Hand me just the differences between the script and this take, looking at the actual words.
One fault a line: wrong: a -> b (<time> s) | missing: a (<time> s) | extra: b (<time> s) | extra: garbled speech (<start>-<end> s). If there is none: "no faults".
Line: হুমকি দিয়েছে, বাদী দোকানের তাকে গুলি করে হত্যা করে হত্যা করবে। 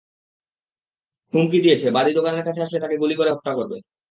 extra: কাছে আসলে (2.5 s)
missing: করে হত্যা (3.5 s)